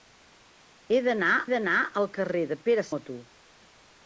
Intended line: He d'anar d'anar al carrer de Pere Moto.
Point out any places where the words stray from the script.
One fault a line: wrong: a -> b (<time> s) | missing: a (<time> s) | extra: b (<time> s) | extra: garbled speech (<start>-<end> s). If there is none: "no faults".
no faults